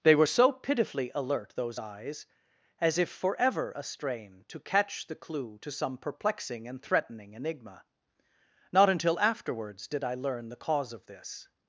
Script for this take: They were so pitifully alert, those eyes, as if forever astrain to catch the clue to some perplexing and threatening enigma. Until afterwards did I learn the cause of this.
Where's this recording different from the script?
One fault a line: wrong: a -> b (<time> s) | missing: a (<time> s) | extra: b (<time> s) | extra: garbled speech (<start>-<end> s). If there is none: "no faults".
extra: Not (8.7 s)